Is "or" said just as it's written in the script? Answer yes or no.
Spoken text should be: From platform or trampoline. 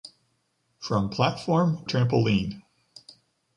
no